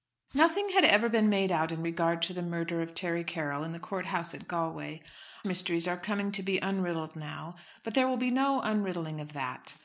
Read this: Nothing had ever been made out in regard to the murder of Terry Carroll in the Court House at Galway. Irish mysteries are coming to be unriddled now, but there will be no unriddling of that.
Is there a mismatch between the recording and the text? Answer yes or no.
yes